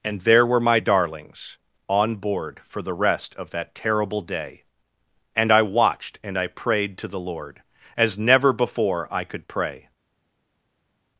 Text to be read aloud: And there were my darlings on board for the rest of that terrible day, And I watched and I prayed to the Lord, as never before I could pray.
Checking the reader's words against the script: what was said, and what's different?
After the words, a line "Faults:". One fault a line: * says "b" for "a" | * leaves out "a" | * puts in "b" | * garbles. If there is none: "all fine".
And there were my darlings on board for the rest of that terrible day, And I watched and I prayed to the Lord, as never before I could pray.
Faults:
all fine